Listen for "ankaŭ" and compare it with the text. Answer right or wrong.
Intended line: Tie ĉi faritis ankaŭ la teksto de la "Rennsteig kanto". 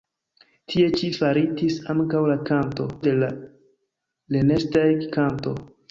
right